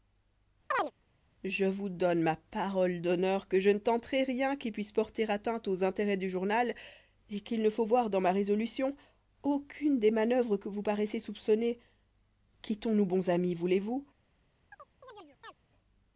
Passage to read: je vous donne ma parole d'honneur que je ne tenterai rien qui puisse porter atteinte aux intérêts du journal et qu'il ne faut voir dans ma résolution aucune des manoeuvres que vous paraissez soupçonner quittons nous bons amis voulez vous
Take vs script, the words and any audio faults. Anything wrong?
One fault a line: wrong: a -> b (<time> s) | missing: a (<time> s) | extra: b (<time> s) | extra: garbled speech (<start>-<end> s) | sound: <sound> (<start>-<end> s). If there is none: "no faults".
sound: chirp (0.7-0.9 s)
sound: chirp (14.7-15.5 s)